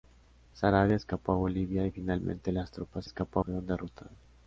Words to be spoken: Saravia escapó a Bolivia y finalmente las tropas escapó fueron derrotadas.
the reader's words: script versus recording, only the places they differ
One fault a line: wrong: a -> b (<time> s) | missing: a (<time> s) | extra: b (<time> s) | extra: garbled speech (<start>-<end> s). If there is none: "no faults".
no faults